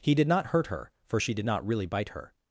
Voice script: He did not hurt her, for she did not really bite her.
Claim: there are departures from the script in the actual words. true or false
false